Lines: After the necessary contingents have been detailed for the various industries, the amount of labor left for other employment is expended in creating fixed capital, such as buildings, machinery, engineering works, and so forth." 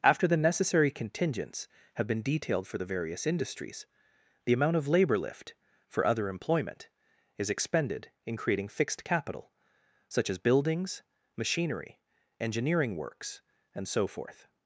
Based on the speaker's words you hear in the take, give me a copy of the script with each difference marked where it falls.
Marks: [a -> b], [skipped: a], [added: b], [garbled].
After the necessary contingents have been detailed for the various industries, the amount of labor [left -> lift] for other employment is expended in creating fixed capital, such as buildings, machinery, engineering works, and so forth."